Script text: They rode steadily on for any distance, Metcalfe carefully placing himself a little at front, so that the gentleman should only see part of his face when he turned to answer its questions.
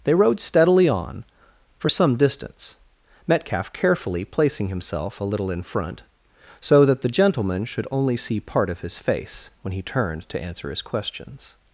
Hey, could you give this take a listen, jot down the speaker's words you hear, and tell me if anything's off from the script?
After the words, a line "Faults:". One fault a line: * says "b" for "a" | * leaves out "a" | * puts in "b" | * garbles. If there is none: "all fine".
They rode steadily on for some distance, Metcalfe carefully placing himself a little in front, so that the gentleman should only see part of his face when he turned to answer his questions.
Faults:
* says "some" for "any"
* says "in" for "at"
* says "his" for "its"